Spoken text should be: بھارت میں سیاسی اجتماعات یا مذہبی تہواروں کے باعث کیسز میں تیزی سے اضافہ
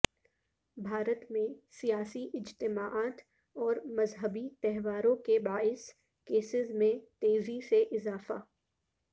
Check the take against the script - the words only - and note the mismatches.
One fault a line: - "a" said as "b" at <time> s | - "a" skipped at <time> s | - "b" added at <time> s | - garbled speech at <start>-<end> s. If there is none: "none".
- "یا" said as "اور" at 3.5 s